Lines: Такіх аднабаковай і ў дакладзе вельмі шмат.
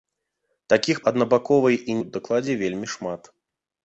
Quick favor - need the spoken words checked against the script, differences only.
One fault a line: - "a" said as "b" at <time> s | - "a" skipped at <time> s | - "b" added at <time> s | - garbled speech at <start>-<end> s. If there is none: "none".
none